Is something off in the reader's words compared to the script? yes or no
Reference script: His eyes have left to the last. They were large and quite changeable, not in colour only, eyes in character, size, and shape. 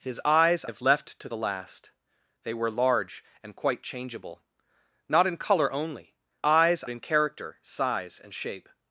no